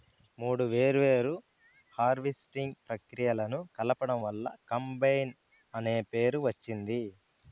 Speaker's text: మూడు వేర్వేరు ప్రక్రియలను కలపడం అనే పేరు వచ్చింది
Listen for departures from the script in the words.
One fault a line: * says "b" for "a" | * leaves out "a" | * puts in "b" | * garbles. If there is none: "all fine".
* puts in "హార్వెస్టింగ్"
* puts in "వల్ల కంబైన్"